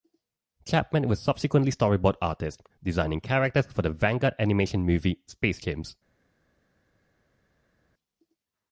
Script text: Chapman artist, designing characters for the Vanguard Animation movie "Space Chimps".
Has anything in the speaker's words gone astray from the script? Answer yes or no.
yes